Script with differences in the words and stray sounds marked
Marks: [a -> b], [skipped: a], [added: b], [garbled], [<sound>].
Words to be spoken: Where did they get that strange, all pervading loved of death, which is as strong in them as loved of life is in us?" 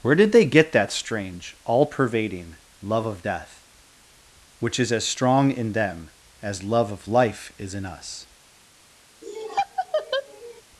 Where did they get that strange, all pervading [loved -> love] of death, which is as strong in them as [loved -> love] of life is in us?" [laugh]